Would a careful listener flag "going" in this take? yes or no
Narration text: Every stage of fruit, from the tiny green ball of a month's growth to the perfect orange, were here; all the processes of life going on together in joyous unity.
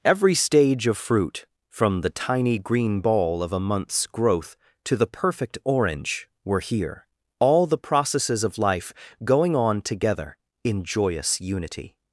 no